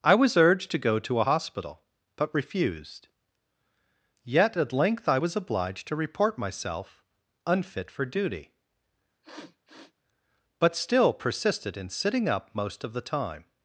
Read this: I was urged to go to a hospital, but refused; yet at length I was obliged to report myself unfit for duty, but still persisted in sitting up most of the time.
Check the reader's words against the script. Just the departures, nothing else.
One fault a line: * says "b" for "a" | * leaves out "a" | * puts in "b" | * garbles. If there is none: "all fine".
all fine